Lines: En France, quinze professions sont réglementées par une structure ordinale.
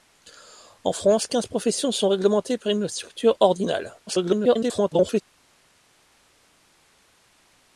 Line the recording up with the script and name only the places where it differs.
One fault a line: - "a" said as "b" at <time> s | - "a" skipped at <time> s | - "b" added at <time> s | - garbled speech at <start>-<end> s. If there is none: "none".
- garbled speech at 4.1-5.2 s